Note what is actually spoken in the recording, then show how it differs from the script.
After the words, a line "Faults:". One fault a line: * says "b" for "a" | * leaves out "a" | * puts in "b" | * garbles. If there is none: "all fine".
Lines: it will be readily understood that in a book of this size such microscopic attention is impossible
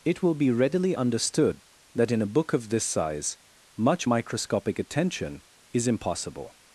it will be readily understood that in a book of this size much microscopic attention is impossible
Faults:
* says "much" for "such"